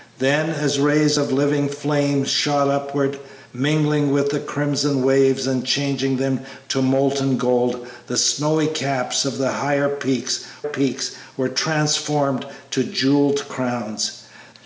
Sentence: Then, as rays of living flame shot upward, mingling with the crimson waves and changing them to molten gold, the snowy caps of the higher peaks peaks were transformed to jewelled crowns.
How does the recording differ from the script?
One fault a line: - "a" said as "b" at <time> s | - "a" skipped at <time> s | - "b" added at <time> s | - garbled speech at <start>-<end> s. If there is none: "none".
none